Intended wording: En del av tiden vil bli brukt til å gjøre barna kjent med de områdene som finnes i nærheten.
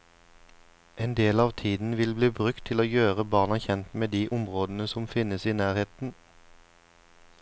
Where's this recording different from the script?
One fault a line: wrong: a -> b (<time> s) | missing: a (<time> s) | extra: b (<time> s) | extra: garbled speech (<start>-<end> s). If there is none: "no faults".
no faults